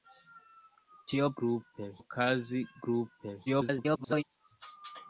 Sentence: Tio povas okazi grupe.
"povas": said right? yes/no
no